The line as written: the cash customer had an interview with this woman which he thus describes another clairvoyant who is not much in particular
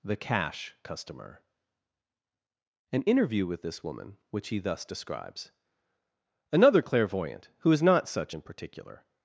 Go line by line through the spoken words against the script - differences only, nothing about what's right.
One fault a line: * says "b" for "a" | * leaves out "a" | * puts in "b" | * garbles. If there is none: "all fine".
* leaves out "had"
* says "such" for "much"